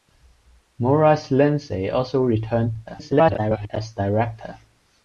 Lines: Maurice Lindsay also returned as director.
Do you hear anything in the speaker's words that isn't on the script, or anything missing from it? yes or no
yes